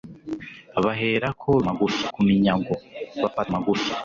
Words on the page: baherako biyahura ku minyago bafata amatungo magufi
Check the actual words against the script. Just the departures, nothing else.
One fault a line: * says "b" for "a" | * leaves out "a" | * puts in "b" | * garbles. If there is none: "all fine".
* says "magufi" for "biyahura"
* leaves out "amatungo"